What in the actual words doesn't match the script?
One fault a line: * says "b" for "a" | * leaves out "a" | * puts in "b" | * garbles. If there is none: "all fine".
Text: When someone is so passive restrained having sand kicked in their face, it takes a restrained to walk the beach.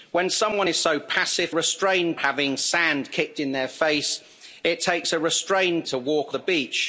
all fine